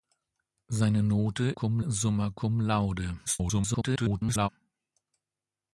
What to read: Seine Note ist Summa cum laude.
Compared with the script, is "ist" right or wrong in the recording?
wrong